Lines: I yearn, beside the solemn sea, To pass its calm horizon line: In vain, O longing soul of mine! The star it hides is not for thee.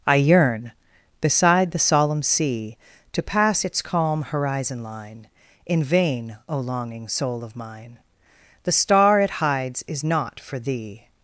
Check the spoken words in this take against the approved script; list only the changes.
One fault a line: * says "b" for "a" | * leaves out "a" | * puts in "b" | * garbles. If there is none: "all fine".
all fine